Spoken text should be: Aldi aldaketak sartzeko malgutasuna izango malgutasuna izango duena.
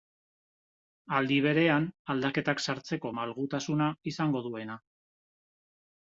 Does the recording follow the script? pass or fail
fail